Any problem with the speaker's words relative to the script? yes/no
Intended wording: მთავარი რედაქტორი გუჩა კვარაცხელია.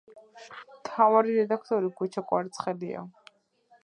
no